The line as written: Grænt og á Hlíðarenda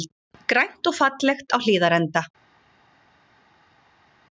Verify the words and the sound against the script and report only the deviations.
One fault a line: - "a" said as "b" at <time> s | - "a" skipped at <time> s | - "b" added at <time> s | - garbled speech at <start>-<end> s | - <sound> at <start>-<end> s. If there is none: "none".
- "fallegt" added at 1.0 s